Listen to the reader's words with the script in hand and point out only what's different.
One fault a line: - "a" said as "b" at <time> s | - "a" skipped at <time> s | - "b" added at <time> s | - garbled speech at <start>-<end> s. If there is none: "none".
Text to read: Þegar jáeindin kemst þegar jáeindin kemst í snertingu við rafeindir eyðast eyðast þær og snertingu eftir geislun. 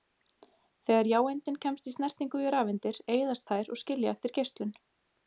- "þegar jáeindin kemst" skipped at 1.9 s
- "eyðast" skipped at 3.5 s
- "snertingu" said as "skilja" at 3.8 s